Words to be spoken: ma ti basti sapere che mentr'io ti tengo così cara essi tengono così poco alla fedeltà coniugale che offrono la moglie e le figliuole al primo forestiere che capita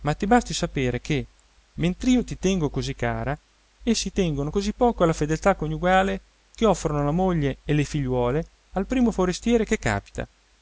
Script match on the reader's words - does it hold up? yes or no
yes